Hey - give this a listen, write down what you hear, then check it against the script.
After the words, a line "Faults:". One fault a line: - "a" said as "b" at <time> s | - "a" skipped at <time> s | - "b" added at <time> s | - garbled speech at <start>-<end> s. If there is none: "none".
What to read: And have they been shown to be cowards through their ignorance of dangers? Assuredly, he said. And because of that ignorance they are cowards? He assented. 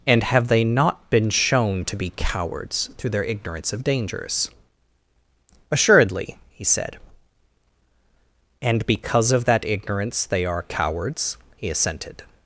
And have they not been shown to be cowards through their ignorance of dangers? Assuredly, he said. And because of that ignorance they are cowards? He assented.
Faults:
- "not" added at 0.6 s